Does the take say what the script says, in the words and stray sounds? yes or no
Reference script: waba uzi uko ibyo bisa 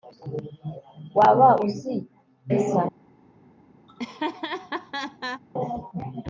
no